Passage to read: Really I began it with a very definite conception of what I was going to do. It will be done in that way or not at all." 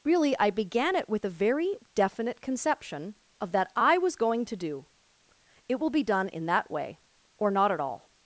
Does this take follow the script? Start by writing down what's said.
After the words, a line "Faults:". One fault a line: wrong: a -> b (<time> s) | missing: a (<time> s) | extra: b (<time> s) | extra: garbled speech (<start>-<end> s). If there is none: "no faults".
Really I began it with a very definite conception of that I was going to do. It will be done in that way or not at all."
Faults:
wrong: what -> that (3.5 s)